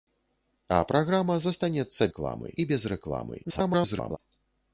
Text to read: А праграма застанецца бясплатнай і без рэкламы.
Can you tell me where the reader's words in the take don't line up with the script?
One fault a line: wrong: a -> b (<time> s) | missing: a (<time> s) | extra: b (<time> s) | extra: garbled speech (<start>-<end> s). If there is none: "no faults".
wrong: бясплатнай -> рэкламы (2.1 s)
extra: garbled speech (3.4-4.2 s)